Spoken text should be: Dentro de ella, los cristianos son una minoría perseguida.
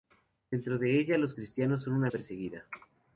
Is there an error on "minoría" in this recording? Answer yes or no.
yes